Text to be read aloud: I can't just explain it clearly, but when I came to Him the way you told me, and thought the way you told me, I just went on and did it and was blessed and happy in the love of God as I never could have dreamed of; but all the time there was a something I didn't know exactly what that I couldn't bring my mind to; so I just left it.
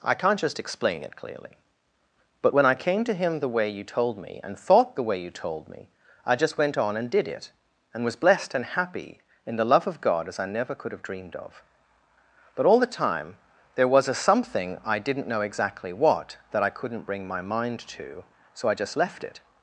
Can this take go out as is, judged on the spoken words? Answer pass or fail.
pass